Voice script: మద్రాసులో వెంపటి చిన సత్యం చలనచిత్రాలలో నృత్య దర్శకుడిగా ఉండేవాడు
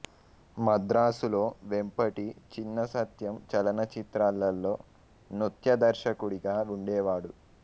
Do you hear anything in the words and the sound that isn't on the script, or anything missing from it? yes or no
no